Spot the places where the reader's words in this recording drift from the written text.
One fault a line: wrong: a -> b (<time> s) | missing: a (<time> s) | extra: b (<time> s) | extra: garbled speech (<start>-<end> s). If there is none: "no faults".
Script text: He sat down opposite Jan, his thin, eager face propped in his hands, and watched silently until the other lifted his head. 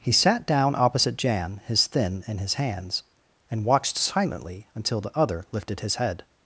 missing: eager face propped (2.2 s)